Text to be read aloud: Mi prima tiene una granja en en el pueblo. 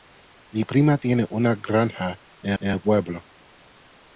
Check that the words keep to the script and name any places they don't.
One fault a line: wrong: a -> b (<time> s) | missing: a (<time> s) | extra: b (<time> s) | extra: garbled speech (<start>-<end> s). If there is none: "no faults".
no faults